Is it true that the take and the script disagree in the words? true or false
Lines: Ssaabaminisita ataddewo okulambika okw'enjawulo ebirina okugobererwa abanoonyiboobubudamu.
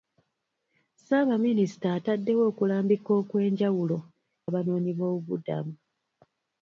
true